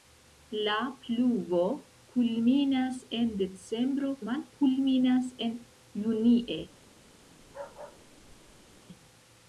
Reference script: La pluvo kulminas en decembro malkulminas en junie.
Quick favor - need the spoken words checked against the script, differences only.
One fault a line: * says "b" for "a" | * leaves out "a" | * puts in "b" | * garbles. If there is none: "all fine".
all fine